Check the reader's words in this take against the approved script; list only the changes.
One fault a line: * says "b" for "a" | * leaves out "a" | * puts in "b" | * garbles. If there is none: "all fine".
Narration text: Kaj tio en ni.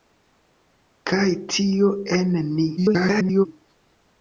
* garbles